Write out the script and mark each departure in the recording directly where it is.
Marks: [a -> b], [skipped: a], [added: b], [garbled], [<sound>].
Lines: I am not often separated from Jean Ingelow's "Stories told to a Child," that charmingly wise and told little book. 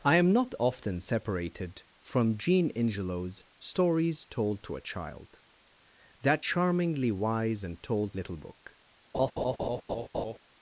I am not often separated from Jean Ingelow's "Stories told to a Child," that charmingly wise and told little book. [laugh]